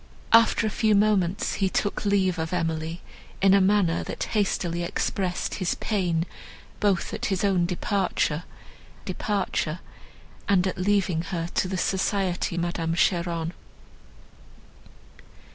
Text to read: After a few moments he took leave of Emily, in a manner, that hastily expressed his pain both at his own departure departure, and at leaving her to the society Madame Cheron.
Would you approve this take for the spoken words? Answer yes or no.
yes